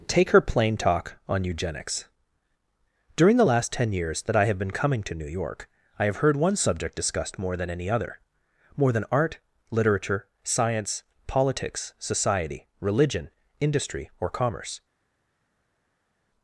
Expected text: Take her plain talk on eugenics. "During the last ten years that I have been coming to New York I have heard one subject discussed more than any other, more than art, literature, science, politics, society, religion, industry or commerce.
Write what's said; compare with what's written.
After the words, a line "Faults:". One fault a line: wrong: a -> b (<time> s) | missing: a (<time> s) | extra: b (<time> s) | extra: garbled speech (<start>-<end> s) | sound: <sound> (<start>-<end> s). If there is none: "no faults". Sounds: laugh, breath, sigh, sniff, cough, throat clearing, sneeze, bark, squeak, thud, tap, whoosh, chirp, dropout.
Take her plain talk on eugenics. "During the last ten years that I have been coming to New York I have heard one subject discussed more than any other, more than art, literature, science, politics, society, religion, industry or commerce.
Faults:
no faults